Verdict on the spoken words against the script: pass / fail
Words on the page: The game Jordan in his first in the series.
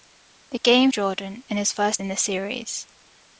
pass